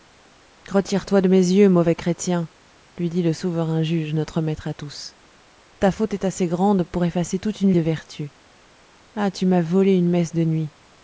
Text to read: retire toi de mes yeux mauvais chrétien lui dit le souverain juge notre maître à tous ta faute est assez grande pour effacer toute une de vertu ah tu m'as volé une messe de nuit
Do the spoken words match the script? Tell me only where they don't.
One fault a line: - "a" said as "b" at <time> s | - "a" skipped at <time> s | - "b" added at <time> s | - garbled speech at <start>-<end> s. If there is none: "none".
none